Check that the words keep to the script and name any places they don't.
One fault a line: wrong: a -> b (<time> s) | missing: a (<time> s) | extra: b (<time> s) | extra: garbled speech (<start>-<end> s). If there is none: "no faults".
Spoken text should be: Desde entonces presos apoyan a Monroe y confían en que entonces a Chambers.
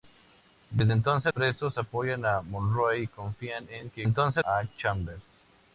no faults